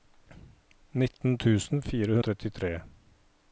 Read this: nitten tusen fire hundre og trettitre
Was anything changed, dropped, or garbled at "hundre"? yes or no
yes